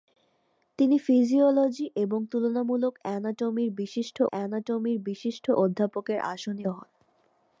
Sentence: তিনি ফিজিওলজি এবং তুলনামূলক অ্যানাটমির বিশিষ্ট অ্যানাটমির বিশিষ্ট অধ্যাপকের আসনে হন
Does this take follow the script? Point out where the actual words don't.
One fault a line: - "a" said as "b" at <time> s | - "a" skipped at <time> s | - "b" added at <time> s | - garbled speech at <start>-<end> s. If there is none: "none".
none